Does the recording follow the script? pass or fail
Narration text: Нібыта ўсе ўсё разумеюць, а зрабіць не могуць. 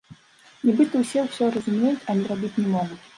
pass